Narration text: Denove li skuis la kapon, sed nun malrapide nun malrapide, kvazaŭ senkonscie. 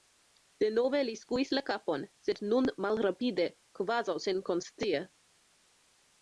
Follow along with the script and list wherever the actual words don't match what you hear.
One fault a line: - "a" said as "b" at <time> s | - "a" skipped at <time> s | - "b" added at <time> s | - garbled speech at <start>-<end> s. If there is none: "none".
- "nun malrapide" skipped at 3.5 s